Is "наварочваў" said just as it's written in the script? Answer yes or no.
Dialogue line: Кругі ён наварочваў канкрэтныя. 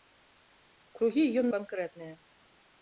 no